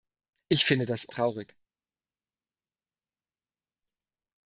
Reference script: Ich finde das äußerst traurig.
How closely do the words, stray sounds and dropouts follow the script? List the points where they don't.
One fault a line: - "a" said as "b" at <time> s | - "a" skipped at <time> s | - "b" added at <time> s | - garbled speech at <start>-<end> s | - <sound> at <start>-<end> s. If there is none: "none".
- "äußerst" skipped at 1.1 s